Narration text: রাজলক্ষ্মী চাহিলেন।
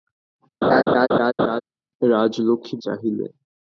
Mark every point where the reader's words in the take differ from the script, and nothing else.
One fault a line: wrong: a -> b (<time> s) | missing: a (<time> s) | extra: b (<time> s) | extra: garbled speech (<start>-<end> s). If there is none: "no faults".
no faults